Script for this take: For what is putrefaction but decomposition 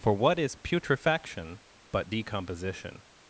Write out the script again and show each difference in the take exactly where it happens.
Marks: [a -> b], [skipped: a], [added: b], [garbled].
For what is putrefaction but decomposition